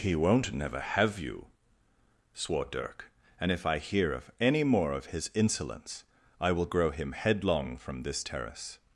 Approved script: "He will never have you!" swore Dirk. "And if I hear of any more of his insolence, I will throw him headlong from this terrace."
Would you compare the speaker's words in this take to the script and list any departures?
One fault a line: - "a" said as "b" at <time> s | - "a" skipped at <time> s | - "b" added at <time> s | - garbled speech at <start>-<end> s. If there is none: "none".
- "will" said as "won't" at 0.1 s
- "throw" said as "grow" at 6.7 s